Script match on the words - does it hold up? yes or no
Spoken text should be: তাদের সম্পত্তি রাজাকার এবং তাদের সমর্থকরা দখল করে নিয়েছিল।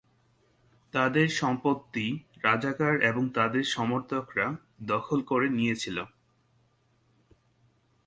yes